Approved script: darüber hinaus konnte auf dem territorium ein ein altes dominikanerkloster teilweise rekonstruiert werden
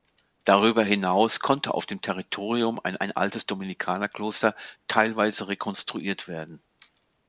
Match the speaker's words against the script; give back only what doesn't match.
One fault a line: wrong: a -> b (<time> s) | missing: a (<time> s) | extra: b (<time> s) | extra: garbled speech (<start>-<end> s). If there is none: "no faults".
no faults